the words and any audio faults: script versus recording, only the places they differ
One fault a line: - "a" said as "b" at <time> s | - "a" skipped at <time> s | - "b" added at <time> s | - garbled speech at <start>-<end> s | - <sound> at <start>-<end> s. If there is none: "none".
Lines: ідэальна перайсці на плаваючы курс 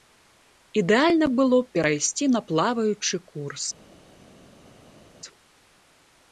- "было б" added at 1.4 s